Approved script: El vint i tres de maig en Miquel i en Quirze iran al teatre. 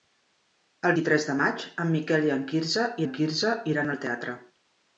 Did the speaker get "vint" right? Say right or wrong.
wrong